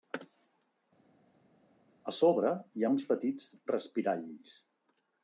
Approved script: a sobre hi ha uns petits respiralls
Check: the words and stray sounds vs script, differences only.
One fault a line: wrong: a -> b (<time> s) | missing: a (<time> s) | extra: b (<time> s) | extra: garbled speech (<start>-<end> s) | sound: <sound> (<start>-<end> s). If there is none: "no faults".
no faults